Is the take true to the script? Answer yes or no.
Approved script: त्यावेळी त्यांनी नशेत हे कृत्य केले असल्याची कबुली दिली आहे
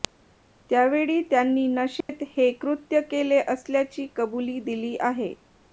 yes